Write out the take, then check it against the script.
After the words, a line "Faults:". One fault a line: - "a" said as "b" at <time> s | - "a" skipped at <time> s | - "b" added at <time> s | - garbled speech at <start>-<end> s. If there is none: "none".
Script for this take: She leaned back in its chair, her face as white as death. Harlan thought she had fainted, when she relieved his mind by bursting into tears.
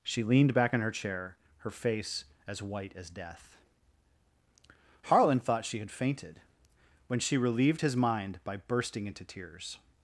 She leaned back in her chair, her face as white as death. Harlan thought she had fainted, when she relieved his mind by bursting into tears.
Faults:
- "its" said as "her" at 0.8 s